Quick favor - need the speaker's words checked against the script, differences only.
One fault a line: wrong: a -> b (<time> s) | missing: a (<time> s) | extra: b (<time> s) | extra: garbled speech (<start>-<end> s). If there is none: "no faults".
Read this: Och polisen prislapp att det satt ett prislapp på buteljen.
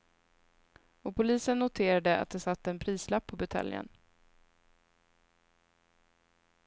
wrong: prislapp -> noterade (1.6 s)
wrong: ett -> en (2.7 s)